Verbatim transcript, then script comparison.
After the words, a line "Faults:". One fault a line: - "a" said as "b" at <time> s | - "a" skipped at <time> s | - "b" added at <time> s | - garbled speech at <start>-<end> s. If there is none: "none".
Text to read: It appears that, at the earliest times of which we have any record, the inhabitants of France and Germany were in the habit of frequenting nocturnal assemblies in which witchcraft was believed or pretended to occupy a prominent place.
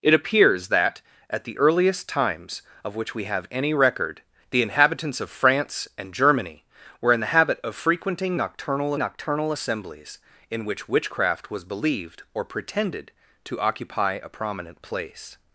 It appears that, at the earliest times of which we have any record, the inhabitants of France and Germany were in the habit of frequenting nocturnal nocturnal assemblies in which witchcraft was believed or pretended to occupy a prominent place.
Faults:
- "nocturnal" added at 9.0 s